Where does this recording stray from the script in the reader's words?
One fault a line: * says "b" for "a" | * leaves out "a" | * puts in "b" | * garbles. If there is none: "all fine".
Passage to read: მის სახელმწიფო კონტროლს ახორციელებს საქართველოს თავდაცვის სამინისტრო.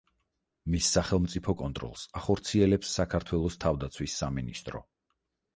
all fine